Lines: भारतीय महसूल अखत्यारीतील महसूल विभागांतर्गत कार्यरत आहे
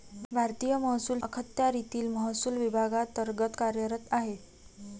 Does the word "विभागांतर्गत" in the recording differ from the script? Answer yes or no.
no